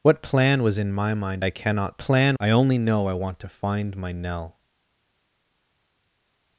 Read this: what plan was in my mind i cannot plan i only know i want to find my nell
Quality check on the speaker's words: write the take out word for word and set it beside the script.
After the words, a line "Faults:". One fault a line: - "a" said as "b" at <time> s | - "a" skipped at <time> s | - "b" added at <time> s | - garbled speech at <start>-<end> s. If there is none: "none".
what plan was in my mind i cannot plan i only know i want to find my nell
Faults:
none